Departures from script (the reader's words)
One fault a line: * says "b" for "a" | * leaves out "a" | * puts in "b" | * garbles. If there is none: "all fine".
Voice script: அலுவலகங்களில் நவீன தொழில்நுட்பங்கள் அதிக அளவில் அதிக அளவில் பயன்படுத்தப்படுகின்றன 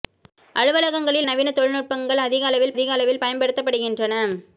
all fine